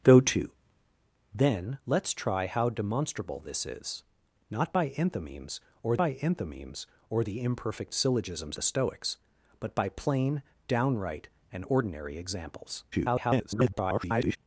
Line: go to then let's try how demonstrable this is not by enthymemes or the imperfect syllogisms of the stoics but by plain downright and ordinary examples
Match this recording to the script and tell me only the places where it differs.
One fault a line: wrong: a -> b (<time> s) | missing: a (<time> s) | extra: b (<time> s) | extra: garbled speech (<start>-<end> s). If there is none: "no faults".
extra: by enthymemes or (6.0 s)
missing: of (8.6 s)
extra: garbled speech (12.9-14.4 s)